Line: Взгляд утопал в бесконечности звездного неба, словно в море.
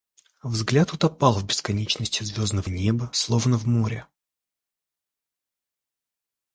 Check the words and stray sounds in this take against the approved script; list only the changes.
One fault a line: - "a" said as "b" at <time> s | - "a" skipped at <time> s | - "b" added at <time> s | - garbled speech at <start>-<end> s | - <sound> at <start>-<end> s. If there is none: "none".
none